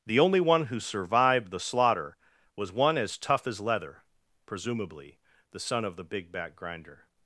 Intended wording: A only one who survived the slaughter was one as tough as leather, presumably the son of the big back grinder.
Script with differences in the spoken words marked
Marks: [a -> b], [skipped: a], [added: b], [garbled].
[A -> The] only one who survived the slaughter was one as tough as leather, presumably the son of the big back grinder.